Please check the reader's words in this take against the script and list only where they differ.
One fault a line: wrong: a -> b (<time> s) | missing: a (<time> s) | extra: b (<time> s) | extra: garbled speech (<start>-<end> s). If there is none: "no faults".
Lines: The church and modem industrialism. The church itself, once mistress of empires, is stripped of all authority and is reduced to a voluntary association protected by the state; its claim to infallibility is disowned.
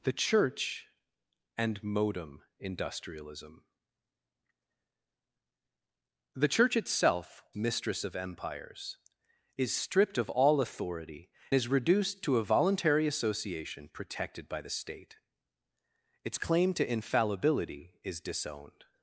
missing: once (7.5 s)
missing: and (11.3 s)